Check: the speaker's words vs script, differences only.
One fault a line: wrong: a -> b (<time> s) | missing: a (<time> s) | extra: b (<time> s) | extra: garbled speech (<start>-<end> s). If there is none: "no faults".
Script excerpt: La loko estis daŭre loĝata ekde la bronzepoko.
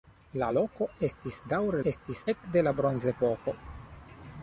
wrong: loĝata -> estis (1.9 s)